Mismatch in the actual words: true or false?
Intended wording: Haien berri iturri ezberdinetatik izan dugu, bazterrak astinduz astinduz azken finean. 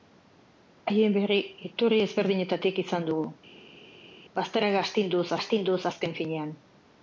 false